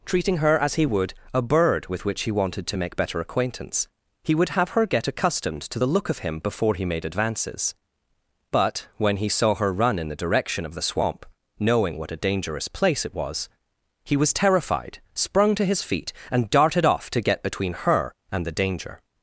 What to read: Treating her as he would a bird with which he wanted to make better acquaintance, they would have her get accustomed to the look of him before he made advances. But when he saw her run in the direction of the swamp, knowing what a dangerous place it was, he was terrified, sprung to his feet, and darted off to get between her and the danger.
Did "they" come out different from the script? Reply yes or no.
yes